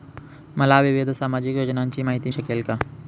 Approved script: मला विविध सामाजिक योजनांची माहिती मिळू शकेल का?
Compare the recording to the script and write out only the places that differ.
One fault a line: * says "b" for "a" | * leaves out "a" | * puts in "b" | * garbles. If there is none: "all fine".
* leaves out "मिळू"